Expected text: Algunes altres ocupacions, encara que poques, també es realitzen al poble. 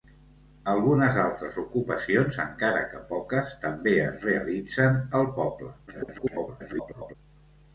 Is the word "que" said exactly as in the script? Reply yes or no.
yes